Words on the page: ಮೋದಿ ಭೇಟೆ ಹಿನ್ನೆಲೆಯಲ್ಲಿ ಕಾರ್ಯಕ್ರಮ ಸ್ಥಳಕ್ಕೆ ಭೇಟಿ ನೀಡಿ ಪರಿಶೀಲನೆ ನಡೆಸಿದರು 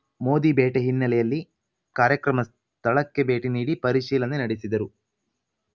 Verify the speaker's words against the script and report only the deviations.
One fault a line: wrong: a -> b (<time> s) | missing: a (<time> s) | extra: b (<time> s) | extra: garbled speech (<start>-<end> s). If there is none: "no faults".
no faults